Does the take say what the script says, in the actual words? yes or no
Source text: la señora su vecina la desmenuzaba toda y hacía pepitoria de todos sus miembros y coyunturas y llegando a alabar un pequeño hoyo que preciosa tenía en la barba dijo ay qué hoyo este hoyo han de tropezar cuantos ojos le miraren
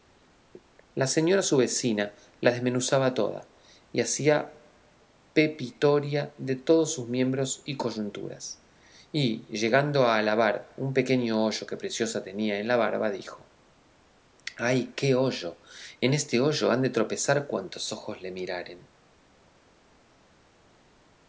no